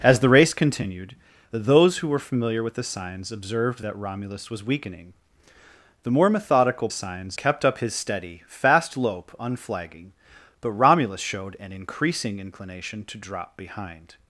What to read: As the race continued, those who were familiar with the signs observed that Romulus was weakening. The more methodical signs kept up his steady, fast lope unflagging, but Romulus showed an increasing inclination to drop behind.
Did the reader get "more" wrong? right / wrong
right